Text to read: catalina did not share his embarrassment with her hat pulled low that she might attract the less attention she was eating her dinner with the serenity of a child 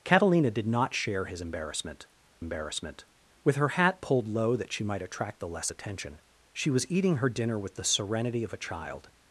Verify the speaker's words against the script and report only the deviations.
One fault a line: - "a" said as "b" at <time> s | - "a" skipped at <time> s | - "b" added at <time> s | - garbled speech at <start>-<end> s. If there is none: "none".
- "embarrassment" added at 2.4 s